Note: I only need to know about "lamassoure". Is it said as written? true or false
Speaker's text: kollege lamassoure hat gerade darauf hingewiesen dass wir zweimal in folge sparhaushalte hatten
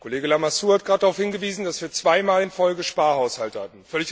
true